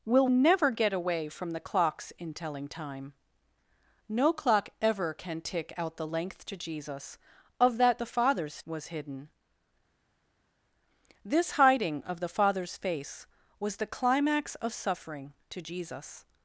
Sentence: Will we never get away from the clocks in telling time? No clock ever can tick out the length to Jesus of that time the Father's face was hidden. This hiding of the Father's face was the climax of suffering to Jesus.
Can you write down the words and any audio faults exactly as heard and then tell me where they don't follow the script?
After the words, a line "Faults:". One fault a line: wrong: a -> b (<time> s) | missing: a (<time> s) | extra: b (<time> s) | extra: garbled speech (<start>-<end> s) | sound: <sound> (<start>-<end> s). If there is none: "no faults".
Will never get away from the clocks in telling time? No clock ever can tick out the length to Jesus of that the Father's was hidden. This hiding of the Father's face was the climax of suffering to Jesus.
Faults:
missing: we (0.3 s)
missing: time (8.0 s)
missing: face (8.6 s)